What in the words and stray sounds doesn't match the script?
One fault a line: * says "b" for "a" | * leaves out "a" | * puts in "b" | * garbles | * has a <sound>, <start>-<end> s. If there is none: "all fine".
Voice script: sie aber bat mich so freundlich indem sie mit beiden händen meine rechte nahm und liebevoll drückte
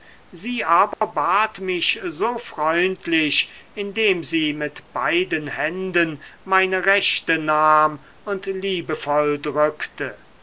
* has a dropout, 0.9-1.0 s